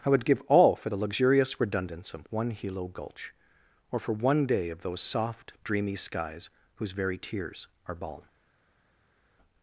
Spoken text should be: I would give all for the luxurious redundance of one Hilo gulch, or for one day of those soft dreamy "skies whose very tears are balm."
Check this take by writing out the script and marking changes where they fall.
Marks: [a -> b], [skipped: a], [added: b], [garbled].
I would give all for the luxurious redundance of one Hilo gulch, or for one day of those soft dreamy "skies whose very tears are balm."